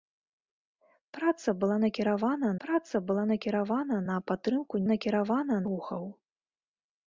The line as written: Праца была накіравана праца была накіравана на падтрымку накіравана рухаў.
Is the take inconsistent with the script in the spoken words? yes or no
no